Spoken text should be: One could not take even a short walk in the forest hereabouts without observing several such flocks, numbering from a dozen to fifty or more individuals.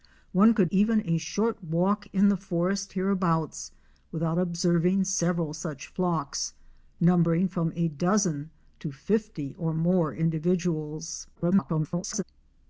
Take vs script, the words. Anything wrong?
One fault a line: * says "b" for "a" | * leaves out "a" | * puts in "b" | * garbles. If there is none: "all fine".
* leaves out "not take"
* garbles